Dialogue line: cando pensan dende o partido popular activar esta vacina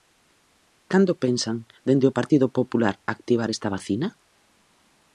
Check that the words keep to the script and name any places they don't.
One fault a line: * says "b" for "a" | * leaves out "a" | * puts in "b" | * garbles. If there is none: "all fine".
all fine